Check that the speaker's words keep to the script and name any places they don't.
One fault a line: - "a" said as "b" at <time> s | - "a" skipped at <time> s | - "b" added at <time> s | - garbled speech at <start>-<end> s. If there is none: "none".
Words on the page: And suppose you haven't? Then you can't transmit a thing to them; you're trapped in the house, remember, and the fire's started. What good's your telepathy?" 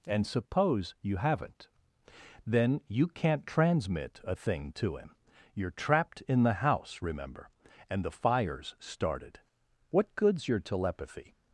- "them" said as "him" at 5.0 s